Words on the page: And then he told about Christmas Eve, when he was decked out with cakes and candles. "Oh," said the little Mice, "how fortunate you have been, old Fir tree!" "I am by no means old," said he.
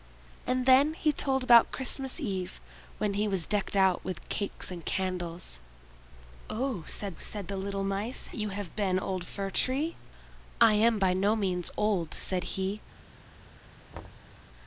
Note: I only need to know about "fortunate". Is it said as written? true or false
false